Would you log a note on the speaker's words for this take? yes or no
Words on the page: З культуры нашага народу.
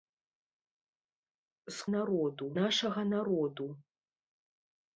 yes